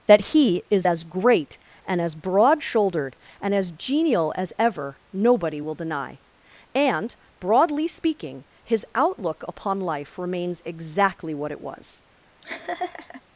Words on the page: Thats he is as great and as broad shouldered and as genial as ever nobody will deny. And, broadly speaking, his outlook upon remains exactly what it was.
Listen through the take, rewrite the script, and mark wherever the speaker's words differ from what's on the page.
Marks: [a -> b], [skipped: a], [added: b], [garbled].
[Thats -> That] he is as great and as broad shouldered and as genial as ever nobody will deny. And, broadly speaking, his outlook upon [added: life] remains exactly what it was.